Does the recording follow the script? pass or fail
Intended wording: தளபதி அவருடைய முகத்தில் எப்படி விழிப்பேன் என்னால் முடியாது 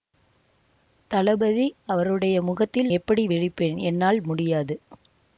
pass